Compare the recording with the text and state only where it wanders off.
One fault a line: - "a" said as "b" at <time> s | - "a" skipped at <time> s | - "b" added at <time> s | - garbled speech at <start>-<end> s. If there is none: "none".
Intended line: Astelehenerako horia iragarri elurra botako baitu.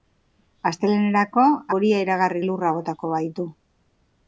none